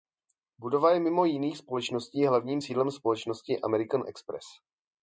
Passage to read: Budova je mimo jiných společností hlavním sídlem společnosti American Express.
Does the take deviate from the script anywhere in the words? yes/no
no